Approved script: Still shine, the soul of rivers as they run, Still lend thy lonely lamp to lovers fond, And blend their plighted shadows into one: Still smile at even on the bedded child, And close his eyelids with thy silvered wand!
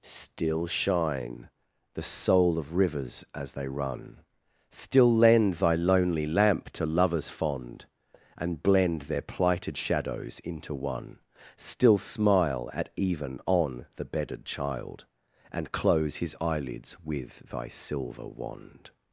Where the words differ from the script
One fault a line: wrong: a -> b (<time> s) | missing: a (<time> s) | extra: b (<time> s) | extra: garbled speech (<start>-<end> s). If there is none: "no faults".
wrong: silvered -> silver (17.7 s)